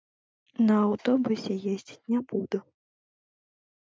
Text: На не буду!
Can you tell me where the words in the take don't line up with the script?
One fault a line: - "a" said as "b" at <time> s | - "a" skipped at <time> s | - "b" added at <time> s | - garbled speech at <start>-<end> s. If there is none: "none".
- "аўтобусе ездзіць" added at 0.8 s